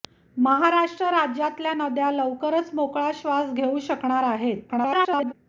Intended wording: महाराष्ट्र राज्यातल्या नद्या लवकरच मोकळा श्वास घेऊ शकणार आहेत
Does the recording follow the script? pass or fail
fail